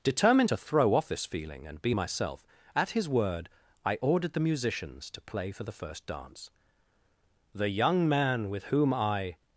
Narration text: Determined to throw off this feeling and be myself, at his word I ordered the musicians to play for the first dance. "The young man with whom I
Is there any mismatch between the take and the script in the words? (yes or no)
no